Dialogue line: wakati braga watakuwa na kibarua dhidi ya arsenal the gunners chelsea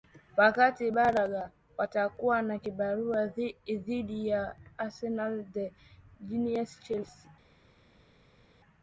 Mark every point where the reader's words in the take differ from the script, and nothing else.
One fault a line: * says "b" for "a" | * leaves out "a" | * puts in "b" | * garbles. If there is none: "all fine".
all fine